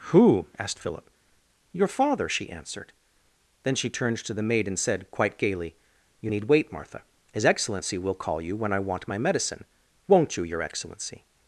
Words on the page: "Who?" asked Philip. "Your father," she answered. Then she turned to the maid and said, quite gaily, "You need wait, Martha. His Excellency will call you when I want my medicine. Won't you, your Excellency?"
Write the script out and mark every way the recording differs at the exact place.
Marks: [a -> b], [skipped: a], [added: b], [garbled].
"Who?" asked Philip. "Your father," she answered. Then she turned to the maid and said, quite gaily, "You need wait, Martha. His Excellency will call you when I want my medicine. Won't you, your Excellency?"